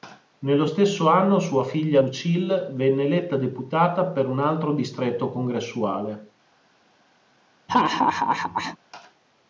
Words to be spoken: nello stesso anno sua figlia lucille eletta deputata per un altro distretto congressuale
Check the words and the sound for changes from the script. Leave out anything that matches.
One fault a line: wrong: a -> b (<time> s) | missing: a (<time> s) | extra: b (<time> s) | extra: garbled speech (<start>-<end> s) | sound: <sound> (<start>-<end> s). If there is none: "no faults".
extra: venne (2.7 s)
sound: laugh (7.7-8.8 s)